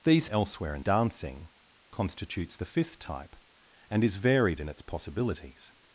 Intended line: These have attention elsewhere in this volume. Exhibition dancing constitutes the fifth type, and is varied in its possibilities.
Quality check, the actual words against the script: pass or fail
fail